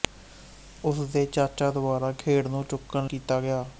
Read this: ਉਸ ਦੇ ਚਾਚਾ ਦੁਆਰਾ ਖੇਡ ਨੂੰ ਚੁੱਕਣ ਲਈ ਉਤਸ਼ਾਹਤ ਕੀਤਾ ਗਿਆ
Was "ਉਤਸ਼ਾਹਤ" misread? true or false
true